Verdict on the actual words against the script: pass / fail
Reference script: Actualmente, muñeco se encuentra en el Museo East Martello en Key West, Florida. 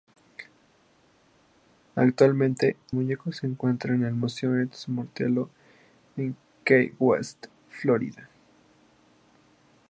pass